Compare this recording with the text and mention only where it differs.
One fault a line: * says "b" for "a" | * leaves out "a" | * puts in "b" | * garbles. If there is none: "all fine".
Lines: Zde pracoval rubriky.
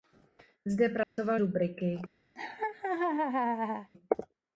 all fine